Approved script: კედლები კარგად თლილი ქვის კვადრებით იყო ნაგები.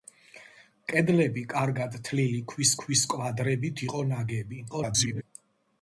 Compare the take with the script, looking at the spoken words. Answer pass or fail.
fail